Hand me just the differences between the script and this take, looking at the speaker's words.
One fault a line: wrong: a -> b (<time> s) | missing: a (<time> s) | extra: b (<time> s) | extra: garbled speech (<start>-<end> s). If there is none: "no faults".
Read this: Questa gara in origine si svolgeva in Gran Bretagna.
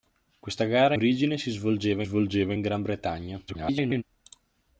missing: in (0.9 s)
extra: svolgeva (2.0 s)
extra: garbled speech (3.5-4.0 s)